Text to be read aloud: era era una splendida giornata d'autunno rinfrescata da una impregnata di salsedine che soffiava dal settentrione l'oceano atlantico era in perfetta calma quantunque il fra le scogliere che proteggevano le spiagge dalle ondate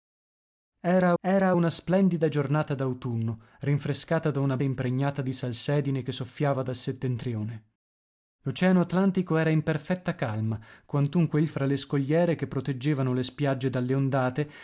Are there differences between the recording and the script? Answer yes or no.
no